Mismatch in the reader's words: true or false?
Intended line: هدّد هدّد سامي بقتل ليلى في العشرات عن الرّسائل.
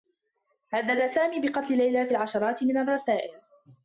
true